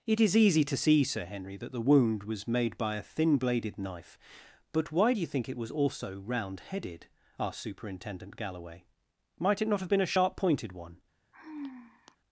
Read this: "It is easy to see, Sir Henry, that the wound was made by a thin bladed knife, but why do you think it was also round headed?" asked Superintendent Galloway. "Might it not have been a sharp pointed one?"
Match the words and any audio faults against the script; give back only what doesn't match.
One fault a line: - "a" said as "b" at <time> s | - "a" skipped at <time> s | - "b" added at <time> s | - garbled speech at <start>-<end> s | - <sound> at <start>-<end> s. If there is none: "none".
- sigh at 11.3-12.2 s